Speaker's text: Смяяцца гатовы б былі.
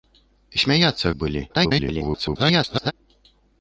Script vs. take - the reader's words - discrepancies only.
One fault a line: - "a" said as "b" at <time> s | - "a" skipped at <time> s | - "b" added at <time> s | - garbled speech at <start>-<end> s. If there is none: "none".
- "гатовы" skipped at 1.1 s
- garbled speech at 1.5-2.9 s